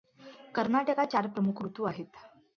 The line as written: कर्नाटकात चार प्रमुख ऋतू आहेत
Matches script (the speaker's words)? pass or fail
pass